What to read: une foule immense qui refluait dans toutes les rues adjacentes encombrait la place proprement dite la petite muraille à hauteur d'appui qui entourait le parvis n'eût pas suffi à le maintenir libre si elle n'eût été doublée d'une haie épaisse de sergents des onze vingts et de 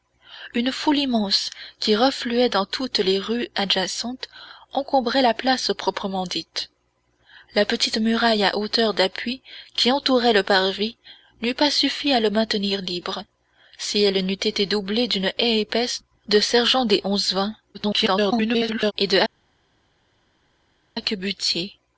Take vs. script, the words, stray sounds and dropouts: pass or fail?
fail